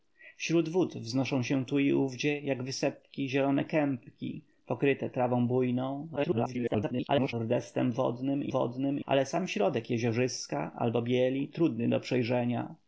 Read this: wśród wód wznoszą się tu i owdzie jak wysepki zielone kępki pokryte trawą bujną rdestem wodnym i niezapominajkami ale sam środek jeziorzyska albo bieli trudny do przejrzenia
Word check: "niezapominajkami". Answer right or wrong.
wrong